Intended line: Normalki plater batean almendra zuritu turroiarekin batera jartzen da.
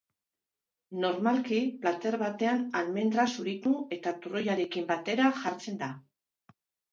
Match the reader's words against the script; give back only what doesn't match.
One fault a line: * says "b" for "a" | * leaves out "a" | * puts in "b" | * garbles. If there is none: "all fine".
* puts in "eta"